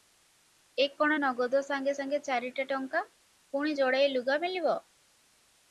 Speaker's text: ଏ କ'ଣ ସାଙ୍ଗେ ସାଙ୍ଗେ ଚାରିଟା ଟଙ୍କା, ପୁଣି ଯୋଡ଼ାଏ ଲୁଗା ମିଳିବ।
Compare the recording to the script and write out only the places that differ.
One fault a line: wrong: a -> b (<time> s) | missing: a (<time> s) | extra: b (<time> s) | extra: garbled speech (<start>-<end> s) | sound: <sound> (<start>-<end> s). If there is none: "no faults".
extra: ନଗଦ (1.2 s)